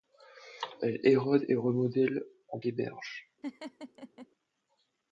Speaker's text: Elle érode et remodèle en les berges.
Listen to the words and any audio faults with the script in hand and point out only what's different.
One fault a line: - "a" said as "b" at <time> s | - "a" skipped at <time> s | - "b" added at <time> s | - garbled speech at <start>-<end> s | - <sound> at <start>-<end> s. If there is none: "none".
- laugh at 3.4-4.3 s